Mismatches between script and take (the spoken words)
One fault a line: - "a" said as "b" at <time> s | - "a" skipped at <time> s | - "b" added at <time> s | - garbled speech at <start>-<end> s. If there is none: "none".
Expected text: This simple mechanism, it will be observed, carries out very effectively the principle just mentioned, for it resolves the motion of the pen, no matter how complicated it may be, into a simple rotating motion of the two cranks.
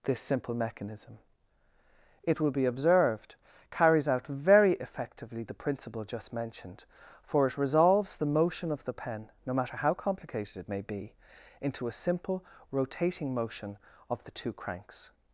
none